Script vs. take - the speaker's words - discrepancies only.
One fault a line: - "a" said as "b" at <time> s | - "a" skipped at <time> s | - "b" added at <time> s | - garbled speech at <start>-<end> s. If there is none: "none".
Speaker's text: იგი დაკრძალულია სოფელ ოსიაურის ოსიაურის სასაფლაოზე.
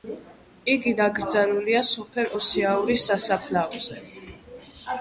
- "ოსიაურის" skipped at 3.1 s